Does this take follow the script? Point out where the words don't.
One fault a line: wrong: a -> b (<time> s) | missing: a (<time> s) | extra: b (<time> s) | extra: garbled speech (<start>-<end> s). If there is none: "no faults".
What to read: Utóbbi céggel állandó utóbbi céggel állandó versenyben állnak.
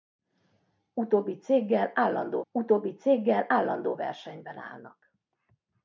no faults